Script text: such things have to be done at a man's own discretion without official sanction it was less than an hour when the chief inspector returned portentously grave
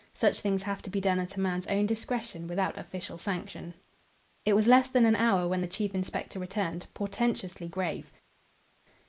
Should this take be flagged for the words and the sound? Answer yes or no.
no